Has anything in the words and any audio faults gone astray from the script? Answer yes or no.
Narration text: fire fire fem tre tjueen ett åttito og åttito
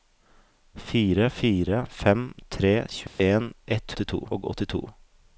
yes